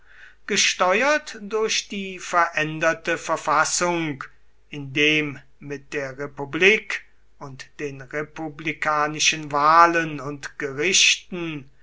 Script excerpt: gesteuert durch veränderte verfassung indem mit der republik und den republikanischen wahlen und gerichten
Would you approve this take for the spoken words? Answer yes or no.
no